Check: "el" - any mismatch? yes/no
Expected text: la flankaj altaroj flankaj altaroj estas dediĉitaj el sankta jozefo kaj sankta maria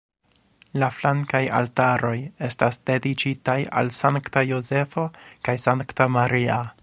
yes